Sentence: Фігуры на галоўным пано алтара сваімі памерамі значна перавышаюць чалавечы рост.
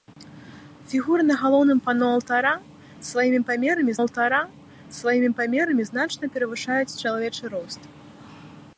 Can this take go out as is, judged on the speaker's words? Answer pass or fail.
fail